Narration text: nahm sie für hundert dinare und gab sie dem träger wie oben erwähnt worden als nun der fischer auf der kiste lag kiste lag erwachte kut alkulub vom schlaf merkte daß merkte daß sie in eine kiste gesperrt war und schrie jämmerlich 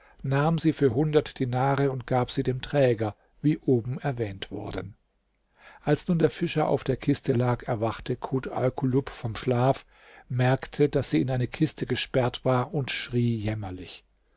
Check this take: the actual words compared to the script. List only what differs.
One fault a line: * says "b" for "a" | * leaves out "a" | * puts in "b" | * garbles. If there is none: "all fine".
* leaves out "kiste lag"
* leaves out "merkte daß"